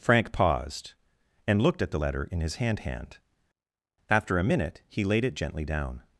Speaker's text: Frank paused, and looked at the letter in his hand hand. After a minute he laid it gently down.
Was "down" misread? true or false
false